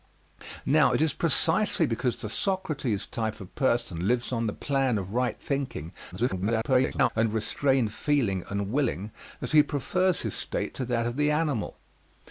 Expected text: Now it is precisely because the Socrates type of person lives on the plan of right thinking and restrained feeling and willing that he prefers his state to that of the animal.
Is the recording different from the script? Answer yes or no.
yes